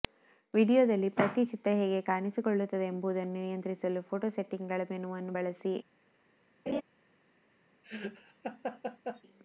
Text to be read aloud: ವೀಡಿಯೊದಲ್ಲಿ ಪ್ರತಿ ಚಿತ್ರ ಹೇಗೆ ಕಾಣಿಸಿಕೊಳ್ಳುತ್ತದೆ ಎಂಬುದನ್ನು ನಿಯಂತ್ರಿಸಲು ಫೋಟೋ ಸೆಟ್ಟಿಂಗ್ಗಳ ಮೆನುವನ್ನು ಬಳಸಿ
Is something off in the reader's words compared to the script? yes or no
no